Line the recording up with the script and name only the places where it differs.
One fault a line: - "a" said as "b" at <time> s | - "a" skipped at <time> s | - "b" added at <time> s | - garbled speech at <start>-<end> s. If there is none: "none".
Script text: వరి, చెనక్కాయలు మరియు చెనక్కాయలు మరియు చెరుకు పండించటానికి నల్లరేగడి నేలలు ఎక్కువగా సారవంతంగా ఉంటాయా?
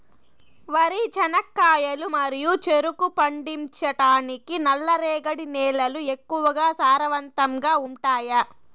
- "చెనక్కాయలు మరియు" skipped at 2.5 s